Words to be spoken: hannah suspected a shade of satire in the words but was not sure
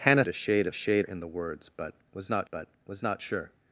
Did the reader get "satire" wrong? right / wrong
wrong